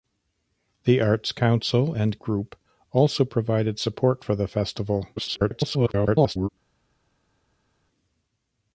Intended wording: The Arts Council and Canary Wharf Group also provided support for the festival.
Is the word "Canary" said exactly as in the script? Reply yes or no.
no